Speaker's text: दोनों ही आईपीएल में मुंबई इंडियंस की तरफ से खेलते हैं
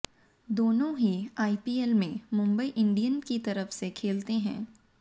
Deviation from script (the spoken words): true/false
false